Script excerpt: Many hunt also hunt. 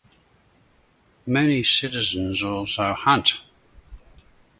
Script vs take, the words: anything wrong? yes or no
yes